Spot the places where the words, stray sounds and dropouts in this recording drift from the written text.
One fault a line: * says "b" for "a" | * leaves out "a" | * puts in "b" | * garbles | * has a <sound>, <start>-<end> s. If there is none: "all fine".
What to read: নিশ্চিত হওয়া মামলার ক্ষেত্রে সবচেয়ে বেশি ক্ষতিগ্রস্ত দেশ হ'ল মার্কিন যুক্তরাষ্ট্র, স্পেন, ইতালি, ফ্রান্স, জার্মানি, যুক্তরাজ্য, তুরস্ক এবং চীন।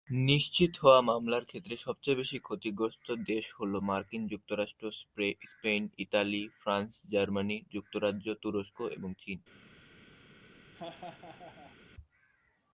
* has a laugh, 10.7-11.8 s